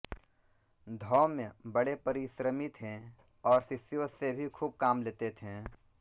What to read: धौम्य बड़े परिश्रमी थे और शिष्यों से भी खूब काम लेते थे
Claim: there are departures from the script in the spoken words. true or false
false